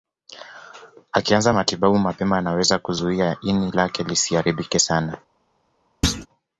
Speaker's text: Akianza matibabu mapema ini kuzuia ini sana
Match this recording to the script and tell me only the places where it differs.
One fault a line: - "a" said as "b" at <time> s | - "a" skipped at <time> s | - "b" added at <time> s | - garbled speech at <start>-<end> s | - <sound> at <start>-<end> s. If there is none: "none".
- "ini" said as "anaweza" at 2.4 s
- "lake lisiharibike" added at 3.7 s
- thud at 6.0-6.3 s